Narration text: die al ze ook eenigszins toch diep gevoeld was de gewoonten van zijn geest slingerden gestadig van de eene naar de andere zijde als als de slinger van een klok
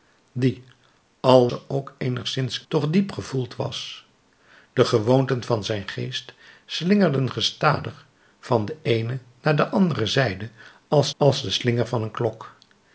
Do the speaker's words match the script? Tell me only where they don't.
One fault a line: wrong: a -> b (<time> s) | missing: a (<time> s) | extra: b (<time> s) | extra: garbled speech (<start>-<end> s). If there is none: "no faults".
no faults